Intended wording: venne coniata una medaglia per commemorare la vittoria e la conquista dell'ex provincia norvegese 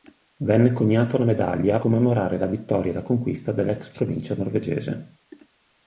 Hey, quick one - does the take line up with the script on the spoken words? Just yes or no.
no